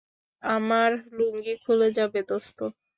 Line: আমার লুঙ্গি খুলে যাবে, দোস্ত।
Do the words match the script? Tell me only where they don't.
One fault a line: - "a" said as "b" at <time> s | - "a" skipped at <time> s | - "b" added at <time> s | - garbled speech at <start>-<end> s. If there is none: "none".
none